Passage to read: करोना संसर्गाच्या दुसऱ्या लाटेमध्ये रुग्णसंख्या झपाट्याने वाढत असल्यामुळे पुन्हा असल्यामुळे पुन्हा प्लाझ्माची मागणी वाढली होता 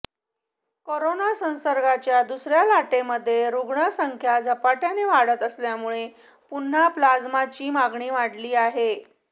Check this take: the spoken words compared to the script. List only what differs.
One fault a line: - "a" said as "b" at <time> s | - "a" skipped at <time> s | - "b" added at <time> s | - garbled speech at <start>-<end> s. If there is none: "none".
- "असल्यामुळे पुन्हा" skipped at 6.9 s
- "होता" said as "आहे" at 8.6 s